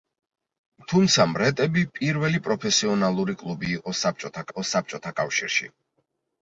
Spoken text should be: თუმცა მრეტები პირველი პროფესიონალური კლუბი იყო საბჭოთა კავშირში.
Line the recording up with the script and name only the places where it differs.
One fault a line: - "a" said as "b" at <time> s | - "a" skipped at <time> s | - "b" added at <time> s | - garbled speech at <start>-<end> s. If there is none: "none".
- "იყო საბჭოთა" added at 4.5 s